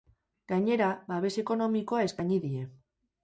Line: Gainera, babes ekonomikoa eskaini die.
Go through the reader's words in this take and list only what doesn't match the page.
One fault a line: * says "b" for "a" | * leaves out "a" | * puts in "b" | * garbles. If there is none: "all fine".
all fine